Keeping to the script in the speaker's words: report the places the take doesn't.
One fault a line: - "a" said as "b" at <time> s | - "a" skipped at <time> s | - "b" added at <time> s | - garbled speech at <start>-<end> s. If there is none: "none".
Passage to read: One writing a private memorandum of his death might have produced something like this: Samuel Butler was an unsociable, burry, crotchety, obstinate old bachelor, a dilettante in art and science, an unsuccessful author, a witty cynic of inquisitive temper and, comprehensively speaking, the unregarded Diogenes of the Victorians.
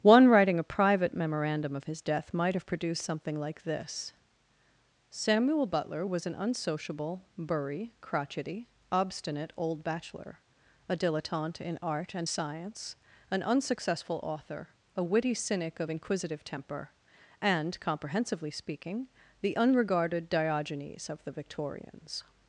none